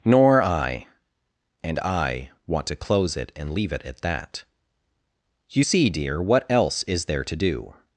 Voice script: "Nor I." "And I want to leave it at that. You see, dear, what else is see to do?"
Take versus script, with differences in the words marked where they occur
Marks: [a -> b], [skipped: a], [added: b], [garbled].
"Nor I." "And I want to [added: close it and] leave it at that. You see, dear, what else is [see -> there] to do?"